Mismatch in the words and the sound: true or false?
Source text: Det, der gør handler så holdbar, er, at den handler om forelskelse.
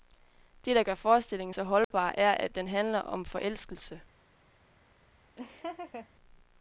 true